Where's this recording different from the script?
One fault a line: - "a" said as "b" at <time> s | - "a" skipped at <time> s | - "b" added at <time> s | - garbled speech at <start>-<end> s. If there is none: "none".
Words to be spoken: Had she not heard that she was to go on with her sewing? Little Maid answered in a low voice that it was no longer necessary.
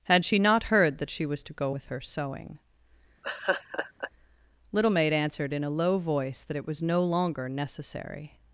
- "on" skipped at 1.8 s